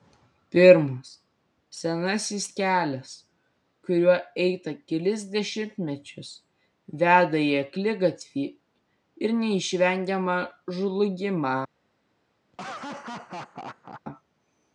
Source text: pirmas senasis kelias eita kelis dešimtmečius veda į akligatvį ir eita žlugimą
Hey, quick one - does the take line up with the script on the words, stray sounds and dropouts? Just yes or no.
no